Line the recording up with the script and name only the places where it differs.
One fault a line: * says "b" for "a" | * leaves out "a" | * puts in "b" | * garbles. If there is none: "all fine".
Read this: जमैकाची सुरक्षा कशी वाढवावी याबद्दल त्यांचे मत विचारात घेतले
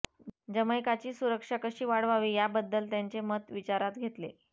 all fine